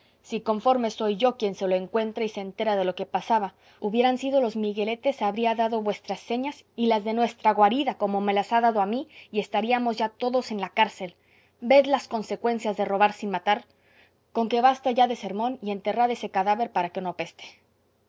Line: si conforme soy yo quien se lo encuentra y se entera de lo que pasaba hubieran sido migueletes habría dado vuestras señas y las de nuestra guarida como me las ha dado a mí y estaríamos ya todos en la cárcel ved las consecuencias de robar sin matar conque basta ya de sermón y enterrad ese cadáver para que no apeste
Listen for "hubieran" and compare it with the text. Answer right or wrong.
right